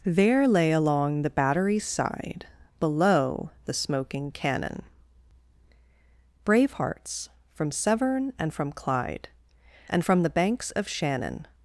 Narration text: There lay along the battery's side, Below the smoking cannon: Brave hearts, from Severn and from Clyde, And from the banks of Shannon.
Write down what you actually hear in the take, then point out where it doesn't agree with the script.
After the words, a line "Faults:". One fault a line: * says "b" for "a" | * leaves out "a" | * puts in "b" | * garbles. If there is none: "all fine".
There lay along the battery's side, Below the smoking cannon: Brave hearts, from Severn and from Clyde, And from the banks of Shannon.
Faults:
all fine